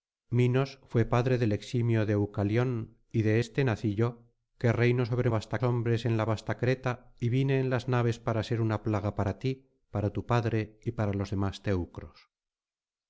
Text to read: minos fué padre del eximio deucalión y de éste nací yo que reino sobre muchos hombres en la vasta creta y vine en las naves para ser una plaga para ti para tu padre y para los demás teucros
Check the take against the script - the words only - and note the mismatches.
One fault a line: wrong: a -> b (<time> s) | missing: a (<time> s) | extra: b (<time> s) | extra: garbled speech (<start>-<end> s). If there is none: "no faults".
wrong: muchos -> vasta (5.3 s)